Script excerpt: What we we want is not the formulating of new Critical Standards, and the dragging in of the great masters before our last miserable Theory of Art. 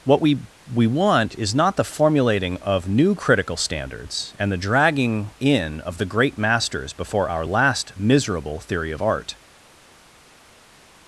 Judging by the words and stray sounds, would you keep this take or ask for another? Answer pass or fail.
pass